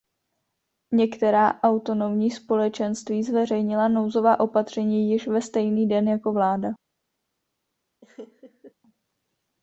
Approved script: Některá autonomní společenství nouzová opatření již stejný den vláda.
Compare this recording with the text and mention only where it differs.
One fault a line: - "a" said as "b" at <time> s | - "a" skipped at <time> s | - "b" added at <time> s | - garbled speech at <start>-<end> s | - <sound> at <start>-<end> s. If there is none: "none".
- "zveřejnila" added at 3.2 s
- "ve" added at 5.3 s
- "jako" added at 6.1 s
- laugh at 8.0-8.7 s